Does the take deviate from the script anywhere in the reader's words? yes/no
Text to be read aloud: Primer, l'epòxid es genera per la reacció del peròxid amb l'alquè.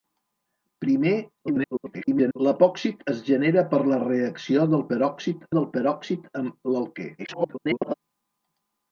yes